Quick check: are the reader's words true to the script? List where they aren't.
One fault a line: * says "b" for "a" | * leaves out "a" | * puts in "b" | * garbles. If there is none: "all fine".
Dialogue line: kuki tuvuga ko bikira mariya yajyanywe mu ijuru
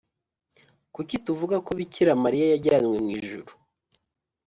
all fine